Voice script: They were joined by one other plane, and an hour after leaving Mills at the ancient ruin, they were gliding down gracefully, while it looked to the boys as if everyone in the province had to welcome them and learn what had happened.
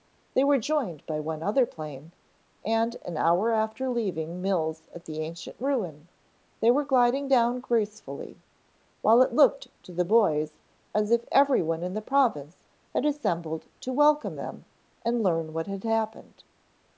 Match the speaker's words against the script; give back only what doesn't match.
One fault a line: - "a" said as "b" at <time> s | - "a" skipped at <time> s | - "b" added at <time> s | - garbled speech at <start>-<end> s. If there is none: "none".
- "assembled" added at 13.0 s